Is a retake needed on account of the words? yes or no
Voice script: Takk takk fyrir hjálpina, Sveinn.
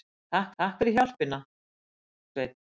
no